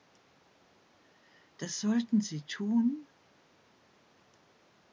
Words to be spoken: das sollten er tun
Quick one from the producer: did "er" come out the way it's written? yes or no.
no